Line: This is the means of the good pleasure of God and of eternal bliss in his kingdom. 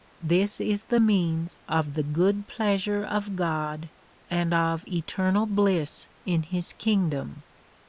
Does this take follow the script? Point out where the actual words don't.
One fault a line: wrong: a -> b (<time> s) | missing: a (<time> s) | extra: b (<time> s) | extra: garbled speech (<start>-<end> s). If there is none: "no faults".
no faults